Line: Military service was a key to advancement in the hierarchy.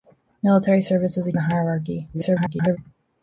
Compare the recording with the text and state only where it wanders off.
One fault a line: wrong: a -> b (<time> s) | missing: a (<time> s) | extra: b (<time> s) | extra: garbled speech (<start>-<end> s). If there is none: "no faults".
missing: key to advancement (1.3 s)
extra: garbled speech (2.1-2.8 s)